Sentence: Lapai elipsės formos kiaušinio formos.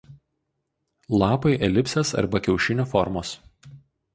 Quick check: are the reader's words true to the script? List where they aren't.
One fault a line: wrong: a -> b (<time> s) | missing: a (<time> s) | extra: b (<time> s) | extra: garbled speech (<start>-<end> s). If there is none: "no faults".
wrong: formos -> arba (2.2 s)